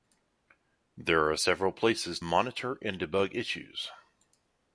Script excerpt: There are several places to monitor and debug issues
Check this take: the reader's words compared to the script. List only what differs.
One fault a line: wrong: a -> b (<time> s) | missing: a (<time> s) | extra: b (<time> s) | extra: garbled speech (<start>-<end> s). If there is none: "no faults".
missing: to (2.2 s)